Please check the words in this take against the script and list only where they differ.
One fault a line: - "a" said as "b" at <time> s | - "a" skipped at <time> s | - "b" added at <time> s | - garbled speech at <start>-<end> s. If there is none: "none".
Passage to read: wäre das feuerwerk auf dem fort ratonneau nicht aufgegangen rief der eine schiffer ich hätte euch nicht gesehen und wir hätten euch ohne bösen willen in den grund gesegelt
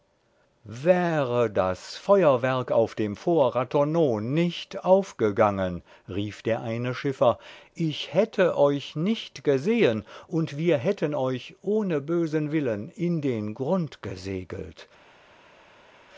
none